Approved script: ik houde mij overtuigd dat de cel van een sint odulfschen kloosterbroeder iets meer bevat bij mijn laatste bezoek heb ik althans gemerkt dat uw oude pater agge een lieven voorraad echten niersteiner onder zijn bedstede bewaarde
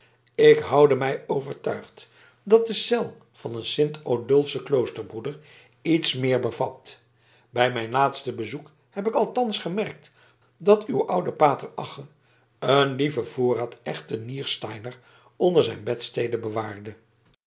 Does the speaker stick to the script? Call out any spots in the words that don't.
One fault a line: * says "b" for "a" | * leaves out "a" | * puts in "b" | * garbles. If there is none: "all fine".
all fine